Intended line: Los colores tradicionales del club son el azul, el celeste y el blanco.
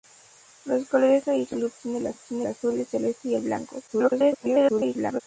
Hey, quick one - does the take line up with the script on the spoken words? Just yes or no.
no